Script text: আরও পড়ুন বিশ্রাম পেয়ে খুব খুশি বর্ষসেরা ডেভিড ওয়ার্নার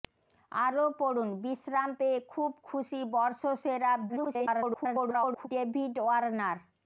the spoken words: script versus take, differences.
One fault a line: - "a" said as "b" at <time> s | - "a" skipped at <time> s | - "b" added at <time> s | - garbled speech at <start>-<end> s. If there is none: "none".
- garbled speech at 4.1-5.5 s